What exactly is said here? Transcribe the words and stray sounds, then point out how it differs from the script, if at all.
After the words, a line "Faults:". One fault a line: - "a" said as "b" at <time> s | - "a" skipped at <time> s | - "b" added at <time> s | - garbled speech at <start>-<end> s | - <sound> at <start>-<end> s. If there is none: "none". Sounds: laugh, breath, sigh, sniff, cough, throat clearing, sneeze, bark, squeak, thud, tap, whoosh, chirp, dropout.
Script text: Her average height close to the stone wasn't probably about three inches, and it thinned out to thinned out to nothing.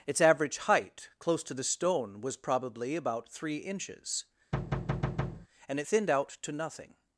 Its average height close to the stone was probably about three inches, and it thinned out to nothing.
Faults:
- "Her" said as "Its" at 0.1 s
- "wasn't" said as "was" at 2.2 s
- thud at 4.5-5.5 s
- "thinned out to" skipped at 6.5 s